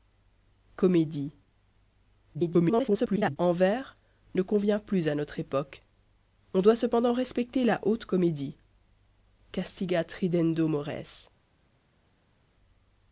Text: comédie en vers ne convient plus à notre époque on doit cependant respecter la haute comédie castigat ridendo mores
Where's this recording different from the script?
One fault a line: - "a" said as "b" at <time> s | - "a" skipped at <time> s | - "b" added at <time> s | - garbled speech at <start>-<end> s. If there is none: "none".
- garbled speech at 2.3-3.4 s